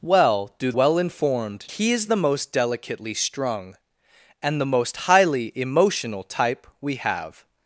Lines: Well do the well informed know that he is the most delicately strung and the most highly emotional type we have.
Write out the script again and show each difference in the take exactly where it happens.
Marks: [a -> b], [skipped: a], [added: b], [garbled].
Well do [skipped: the] well informed [skipped: know that] he is the most delicately strung and the most highly emotional type we have.